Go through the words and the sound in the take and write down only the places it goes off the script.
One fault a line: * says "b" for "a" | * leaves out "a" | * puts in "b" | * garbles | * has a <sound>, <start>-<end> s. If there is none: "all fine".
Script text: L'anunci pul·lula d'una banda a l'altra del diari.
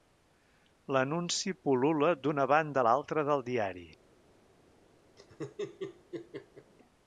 * has a laugh, 5.2-6.7 s